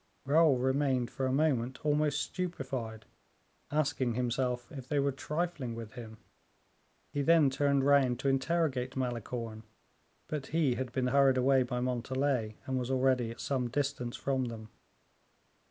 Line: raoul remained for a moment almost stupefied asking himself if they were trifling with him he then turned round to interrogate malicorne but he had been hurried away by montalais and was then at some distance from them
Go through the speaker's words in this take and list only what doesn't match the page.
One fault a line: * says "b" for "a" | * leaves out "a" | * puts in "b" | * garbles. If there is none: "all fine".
* says "already" for "then"